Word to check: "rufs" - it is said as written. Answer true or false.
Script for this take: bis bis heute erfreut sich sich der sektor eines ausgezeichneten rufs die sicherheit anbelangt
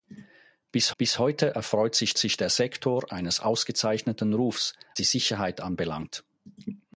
true